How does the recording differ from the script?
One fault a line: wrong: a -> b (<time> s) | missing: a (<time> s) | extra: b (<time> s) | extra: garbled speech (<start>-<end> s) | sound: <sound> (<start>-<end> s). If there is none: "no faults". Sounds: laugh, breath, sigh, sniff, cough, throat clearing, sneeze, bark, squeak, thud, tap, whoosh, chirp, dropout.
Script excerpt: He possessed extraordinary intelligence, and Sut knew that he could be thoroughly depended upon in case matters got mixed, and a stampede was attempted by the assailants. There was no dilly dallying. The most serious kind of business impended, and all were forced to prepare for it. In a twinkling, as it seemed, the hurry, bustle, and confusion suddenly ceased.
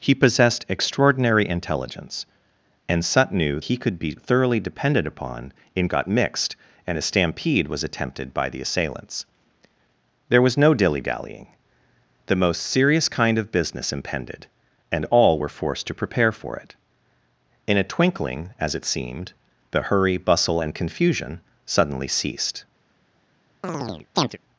missing: that (3.6 s)
missing: case matters (5.9 s)
sound: chirp (23.6-24.4 s)